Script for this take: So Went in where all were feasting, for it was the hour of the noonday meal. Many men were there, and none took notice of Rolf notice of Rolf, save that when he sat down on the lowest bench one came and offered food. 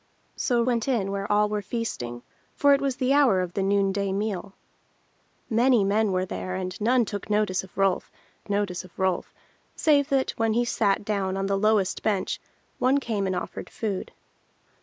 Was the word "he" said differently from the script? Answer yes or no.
no